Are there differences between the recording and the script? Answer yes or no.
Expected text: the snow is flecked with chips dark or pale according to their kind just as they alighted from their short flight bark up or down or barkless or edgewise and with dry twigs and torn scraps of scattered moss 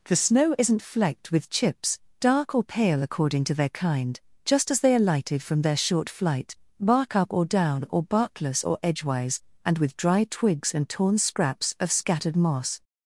yes